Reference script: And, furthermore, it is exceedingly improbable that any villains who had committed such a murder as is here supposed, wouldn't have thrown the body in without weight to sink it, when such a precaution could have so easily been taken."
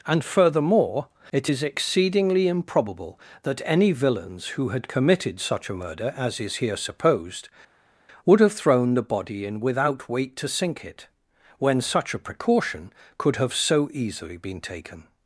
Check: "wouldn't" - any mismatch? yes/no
yes